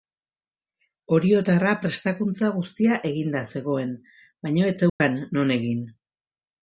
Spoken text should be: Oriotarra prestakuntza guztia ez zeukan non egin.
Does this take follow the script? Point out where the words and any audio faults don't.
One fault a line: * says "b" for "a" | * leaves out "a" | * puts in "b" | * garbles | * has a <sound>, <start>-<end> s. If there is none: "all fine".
* puts in "eginda zegoen baina"
* has a dropout, 4.9-5.0 s